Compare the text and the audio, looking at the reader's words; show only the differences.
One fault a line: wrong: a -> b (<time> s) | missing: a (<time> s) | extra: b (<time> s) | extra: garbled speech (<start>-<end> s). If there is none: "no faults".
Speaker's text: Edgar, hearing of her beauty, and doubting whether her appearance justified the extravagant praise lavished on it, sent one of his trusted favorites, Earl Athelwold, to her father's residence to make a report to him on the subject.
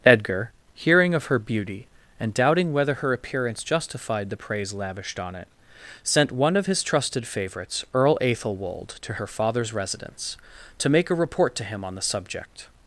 missing: extravagant (4.4 s)